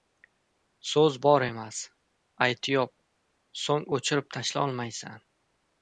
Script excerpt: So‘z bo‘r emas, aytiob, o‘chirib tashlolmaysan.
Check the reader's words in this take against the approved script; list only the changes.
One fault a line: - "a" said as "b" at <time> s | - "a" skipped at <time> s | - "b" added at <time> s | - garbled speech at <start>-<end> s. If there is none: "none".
- "so‘ng" added at 3.6 s